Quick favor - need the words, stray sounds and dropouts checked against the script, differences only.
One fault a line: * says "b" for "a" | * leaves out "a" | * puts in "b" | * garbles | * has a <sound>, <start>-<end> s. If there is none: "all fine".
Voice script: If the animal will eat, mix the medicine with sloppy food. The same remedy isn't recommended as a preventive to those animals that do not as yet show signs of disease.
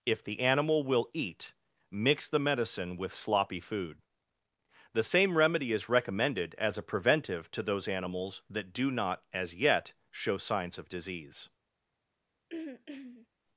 * says "is" for "isn't"
* has a throat clearing, 12.5-13.3 s